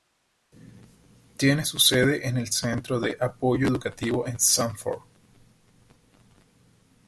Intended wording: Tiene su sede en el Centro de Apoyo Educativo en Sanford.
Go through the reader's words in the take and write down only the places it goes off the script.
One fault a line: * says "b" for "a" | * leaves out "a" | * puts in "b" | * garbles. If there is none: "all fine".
all fine